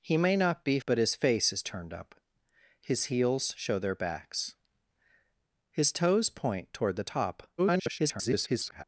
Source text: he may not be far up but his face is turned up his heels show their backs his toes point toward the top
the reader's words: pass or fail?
fail